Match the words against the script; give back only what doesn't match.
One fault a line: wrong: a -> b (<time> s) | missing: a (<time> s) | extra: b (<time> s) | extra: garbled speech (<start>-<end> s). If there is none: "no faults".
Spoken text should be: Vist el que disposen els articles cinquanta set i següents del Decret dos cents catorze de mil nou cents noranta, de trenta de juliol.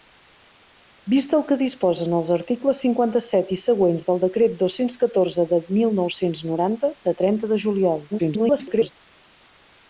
extra: garbled speech (8.1-8.9 s)